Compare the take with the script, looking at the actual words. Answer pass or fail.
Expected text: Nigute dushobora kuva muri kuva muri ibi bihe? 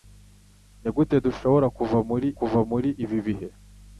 pass